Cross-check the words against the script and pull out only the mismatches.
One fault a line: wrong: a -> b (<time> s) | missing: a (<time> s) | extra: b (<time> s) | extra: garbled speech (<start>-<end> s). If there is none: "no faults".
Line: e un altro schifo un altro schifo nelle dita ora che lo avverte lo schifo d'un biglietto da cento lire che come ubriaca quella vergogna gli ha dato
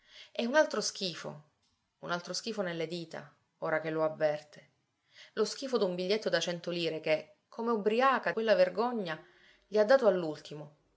no faults